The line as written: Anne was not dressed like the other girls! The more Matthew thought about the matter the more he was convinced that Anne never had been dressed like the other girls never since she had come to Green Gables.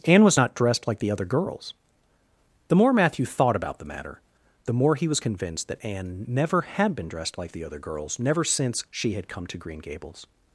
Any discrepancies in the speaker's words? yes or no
no